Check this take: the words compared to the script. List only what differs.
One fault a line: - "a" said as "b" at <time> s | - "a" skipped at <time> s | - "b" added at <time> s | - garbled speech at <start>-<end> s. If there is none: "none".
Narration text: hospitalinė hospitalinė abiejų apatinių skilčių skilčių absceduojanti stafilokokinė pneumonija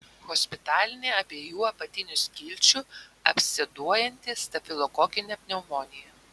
- "hospitalinė" skipped at 1.1 s
- "skilčių" skipped at 2.8 s